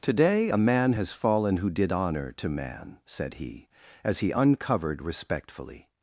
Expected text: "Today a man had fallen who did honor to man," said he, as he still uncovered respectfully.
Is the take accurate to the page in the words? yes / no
no